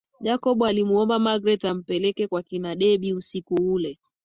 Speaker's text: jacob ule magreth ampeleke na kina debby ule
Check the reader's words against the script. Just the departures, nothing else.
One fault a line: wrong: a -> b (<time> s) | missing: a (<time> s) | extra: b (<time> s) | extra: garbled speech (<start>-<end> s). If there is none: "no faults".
wrong: ule -> alimuomba (0.6 s)
wrong: na -> kwa (2.3 s)
extra: usiku (3.1 s)